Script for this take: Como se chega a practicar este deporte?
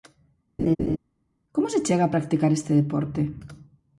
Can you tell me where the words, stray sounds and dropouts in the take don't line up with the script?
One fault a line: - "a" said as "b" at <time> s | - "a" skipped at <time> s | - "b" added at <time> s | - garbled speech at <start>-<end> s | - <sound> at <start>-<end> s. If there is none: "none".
- laugh at 0.6-1.0 s